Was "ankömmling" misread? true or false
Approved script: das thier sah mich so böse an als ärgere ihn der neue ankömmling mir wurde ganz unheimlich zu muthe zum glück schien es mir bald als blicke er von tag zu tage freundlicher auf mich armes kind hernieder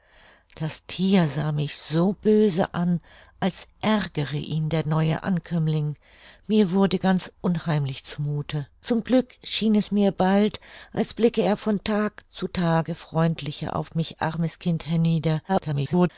false